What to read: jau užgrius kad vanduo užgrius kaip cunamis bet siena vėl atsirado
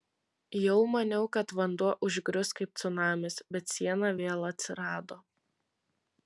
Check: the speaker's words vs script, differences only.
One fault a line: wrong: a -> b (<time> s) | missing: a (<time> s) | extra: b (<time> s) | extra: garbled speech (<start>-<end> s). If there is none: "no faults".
wrong: užgrius -> maniau (0.9 s)